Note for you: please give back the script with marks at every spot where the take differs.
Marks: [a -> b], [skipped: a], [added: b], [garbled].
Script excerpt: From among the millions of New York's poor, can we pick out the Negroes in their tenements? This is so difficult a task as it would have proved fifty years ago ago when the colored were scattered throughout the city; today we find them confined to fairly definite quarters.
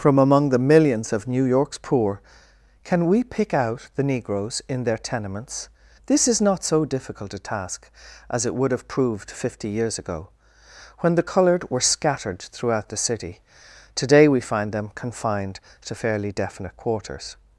From among the millions of New York's poor, can we pick out the Negroes in their tenements? This is [added: not] so difficult a task as it would have proved fifty years ago [skipped: ago] when the colored were scattered throughout the city; today we find them confined to fairly definite quarters.